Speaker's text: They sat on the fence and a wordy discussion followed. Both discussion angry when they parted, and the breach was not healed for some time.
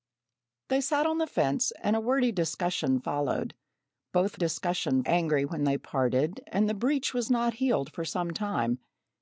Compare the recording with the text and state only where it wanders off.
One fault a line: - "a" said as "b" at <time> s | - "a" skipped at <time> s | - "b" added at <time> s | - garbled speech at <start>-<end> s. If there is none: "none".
none